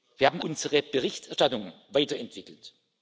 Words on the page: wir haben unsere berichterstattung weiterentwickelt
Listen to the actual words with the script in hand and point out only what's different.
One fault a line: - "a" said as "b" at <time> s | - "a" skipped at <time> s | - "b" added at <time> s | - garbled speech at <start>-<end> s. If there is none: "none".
none